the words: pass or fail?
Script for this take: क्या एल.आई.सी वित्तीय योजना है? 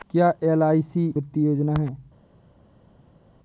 pass